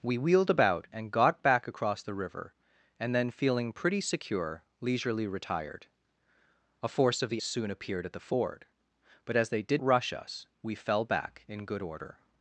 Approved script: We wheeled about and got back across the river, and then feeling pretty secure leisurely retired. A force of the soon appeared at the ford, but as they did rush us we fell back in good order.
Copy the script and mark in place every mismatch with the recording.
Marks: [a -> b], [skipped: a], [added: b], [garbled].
We wheeled about and got back across the river, and then feeling pretty secure leisurely retired. A force of the soon appeared at the ford, but as they did rush us we fell back in good order.